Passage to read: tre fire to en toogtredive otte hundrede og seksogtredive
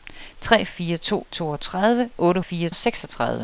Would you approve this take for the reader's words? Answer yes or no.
no